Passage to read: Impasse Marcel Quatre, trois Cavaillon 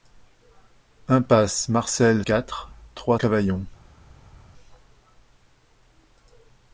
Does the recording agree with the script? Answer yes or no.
yes